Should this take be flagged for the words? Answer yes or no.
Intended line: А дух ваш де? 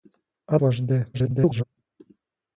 yes